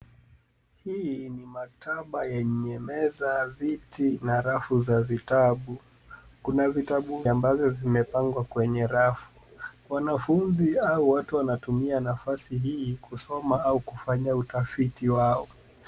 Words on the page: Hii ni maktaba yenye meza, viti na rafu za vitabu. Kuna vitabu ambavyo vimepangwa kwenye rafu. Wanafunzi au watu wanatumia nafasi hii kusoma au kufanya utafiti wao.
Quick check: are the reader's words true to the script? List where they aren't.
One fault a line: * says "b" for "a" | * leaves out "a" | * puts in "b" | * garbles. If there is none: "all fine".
all fine